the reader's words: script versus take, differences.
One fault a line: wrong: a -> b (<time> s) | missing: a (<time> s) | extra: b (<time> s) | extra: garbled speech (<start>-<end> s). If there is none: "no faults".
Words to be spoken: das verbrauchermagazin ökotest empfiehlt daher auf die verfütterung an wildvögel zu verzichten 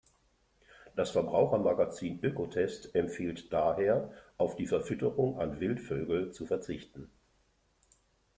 no faults